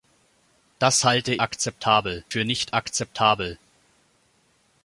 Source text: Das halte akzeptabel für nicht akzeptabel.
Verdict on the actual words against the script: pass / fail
pass